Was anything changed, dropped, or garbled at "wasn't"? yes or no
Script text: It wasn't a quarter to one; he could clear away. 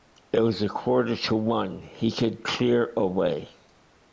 yes